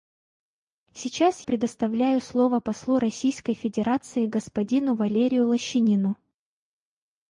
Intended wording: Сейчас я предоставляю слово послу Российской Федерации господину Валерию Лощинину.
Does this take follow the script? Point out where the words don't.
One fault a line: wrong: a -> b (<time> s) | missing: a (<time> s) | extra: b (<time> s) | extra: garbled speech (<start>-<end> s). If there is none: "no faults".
missing: я (1.4 s)